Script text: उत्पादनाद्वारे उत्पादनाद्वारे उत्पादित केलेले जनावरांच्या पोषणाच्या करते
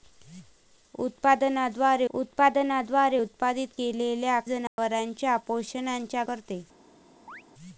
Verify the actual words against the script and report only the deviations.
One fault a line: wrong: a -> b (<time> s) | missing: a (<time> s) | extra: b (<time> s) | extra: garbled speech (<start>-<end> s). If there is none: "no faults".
no faults